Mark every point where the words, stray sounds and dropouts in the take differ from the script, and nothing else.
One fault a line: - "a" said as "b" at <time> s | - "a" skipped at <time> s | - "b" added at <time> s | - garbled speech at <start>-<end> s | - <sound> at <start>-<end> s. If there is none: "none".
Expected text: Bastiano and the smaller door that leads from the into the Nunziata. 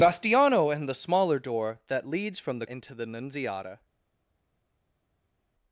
none